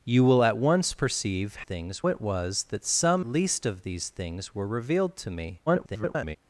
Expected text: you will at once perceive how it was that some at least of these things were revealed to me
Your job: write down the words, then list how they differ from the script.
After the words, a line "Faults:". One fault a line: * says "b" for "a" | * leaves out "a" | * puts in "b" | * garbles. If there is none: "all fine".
you will at once perceive things it was that some least of these things were revealed to me [garbled]
Faults:
* says "things" for "how"
* leaves out "at"
* garbles